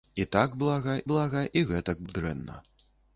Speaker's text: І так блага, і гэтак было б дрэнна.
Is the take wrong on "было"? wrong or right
wrong